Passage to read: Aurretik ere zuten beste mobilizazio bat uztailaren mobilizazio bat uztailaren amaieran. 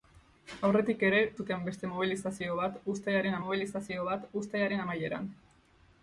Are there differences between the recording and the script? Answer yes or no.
no